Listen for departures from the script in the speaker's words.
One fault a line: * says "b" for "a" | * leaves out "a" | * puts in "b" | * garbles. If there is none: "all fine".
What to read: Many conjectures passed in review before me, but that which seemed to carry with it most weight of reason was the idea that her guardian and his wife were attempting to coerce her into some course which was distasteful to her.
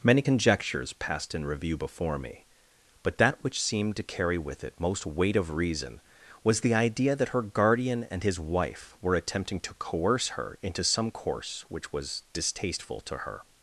all fine